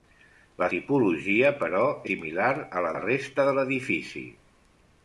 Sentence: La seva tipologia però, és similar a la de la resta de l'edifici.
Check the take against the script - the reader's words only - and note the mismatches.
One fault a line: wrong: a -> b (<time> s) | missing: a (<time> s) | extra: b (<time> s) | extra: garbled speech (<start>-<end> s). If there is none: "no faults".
missing: seva (0.7 s)
missing: és (1.8 s)
missing: de (2.9 s)